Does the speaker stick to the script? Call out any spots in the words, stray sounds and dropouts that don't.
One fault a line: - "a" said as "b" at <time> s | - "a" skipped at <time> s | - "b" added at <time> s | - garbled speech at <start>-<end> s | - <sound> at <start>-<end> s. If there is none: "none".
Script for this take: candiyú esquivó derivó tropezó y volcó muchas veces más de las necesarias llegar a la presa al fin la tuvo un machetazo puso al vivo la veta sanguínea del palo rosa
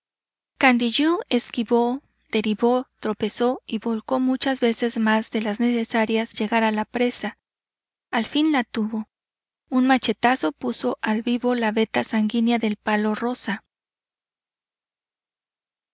none